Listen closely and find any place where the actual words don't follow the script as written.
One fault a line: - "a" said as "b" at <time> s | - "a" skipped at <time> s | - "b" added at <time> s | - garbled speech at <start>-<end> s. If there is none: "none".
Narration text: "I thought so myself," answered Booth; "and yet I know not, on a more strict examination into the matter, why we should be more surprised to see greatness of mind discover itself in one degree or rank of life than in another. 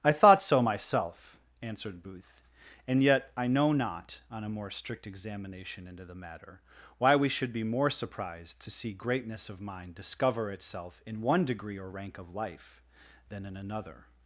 none